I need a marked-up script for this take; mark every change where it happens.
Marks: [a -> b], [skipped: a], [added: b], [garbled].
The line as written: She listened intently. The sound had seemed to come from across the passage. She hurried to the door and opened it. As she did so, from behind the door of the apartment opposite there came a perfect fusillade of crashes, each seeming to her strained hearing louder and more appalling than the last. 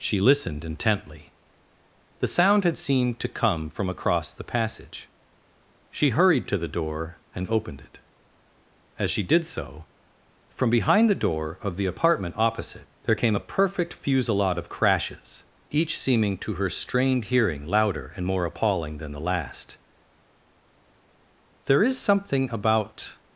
She listened intently. The sound had seemed to come from across the passage. She hurried to the door and opened it. As she did so, from behind the door of the apartment opposite there came a perfect fusillade of crashes, each seeming to her strained hearing louder and more appalling than the last. [added: There is something about]